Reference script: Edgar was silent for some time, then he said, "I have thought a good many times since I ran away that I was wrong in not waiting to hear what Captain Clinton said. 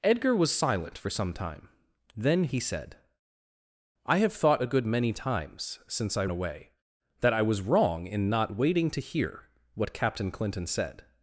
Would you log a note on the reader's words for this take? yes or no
yes